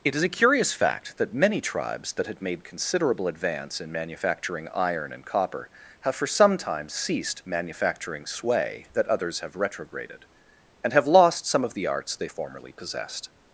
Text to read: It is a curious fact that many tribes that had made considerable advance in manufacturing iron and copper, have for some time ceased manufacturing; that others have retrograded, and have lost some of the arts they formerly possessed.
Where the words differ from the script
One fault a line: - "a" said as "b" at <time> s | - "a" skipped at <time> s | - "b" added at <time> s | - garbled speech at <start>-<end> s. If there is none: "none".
- "sway" added at 8.2 s